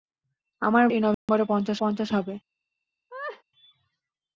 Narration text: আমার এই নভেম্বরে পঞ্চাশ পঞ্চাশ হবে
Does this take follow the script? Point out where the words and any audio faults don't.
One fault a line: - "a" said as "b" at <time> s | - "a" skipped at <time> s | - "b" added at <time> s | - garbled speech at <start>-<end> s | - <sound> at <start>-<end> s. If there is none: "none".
- dropout at 1.1-1.3 s
- laugh at 3.1-3.4 s